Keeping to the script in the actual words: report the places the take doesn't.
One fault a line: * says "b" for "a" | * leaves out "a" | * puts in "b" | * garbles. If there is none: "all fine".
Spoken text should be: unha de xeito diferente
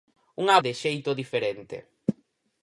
all fine